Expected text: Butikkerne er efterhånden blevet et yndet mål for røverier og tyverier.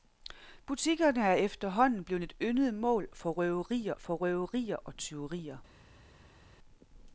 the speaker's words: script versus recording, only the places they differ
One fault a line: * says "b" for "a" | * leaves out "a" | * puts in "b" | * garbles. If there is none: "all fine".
* puts in "for røverier"